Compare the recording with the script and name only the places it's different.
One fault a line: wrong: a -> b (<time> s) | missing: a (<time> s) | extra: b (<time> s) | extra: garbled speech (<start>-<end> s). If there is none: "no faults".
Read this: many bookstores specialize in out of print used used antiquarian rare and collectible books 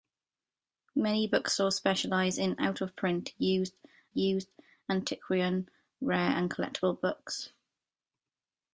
no faults